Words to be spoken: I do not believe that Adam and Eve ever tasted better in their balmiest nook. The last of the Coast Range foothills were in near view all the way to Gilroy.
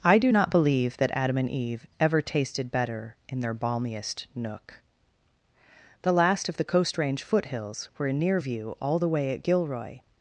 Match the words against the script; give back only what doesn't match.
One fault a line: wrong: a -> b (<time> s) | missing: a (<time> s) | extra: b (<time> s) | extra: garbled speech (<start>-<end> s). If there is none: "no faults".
wrong: to -> at (9.3 s)